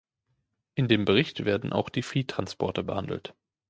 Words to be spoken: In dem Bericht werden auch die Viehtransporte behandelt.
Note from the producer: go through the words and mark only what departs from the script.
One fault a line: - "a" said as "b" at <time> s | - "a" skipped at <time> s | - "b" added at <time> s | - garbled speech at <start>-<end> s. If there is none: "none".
none